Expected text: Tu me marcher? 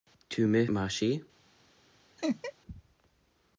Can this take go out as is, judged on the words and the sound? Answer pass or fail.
fail